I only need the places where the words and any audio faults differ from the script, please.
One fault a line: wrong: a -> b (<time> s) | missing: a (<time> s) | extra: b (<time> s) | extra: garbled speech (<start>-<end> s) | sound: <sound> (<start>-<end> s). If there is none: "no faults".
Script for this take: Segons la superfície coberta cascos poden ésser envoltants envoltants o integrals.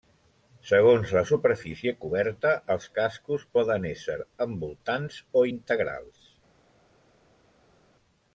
extra: els (2.8 s)
missing: envoltants (5.2 s)